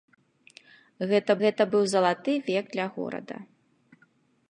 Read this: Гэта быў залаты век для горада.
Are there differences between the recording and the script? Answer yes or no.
yes